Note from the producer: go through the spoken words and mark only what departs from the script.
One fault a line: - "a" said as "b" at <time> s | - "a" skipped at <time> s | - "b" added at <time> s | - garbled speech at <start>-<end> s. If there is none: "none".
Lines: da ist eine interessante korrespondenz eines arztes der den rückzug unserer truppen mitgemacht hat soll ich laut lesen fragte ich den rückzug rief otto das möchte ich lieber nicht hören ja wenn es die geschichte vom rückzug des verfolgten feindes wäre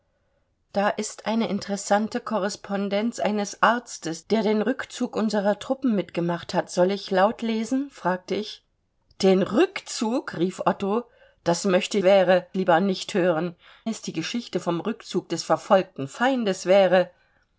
- "ich" said as "wäre" at 12.0 s
- "ja wenn" skipped at 13.5 s